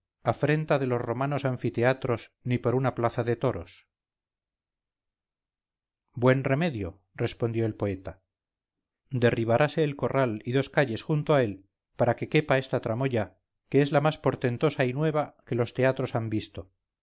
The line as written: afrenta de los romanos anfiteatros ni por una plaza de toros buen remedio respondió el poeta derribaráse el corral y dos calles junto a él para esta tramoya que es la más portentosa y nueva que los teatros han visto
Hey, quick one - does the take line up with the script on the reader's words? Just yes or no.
no